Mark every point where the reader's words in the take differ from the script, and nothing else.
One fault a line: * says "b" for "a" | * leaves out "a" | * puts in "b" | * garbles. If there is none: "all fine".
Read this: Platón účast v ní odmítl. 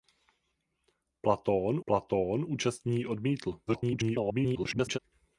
* puts in "platón"
* garbles